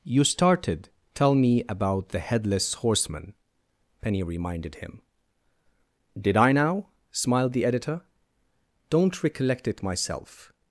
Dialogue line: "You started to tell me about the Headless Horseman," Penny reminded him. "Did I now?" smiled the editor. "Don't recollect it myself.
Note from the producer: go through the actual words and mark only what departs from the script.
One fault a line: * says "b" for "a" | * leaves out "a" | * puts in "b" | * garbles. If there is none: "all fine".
* leaves out "to"